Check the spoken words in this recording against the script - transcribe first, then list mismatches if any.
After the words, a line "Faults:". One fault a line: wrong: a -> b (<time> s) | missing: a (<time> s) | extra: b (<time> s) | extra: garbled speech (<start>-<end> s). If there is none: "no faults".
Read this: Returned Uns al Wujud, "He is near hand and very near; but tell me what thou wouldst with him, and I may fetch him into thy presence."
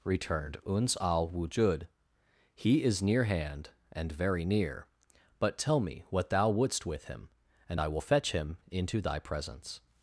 Returned Uns al Wujud, "He is near hand and very near; but tell me what thou wouldst with him, and I will fetch him into thy presence."
Faults:
wrong: may -> will (7.9 s)